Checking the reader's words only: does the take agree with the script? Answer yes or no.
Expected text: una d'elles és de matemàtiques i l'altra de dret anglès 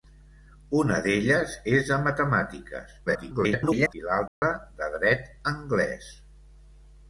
no